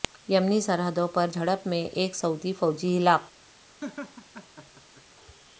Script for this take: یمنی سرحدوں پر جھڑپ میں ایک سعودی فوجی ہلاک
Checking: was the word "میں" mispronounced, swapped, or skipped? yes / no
no